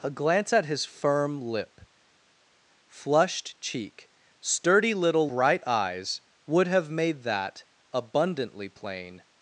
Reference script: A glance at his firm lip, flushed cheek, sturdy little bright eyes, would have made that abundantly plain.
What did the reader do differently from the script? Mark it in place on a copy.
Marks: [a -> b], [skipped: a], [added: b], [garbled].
A glance at his firm lip, flushed cheek, sturdy little bright eyes, would have made that abundantly plain.